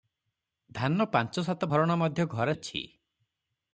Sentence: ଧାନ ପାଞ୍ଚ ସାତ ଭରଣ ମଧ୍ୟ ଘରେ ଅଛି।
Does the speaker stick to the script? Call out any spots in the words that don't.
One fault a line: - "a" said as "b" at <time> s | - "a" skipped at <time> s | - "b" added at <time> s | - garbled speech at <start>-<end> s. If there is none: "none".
none